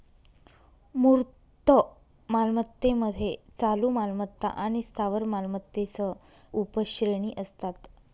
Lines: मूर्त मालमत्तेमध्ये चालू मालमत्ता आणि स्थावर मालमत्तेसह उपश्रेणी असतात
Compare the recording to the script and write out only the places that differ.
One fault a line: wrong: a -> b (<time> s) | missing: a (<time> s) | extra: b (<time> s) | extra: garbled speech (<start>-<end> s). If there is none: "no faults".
no faults